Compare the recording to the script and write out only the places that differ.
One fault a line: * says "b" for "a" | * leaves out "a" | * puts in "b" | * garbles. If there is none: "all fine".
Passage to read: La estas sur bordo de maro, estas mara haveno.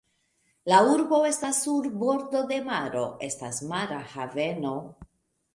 * puts in "urbo"